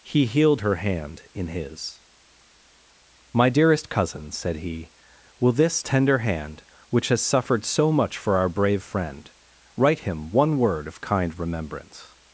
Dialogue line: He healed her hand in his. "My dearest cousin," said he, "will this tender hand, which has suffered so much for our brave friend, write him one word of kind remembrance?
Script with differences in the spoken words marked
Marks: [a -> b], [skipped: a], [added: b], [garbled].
He healed her hand in his. "My dearest cousin," said he, "will this tender hand, which has suffered so much for our brave friend, write him one word of kind remembrance?